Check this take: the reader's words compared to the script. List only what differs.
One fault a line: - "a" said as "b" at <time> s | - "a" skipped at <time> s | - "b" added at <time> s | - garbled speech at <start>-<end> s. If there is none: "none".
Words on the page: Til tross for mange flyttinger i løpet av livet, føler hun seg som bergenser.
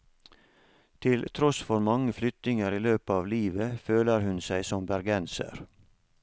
none